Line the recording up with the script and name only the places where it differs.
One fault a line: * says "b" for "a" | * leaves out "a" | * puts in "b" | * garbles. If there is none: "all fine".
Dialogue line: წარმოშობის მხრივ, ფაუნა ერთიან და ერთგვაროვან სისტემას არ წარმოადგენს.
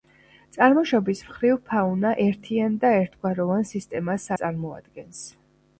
* leaves out "არ"